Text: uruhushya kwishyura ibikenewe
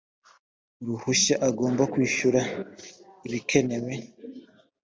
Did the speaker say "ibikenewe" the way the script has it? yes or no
yes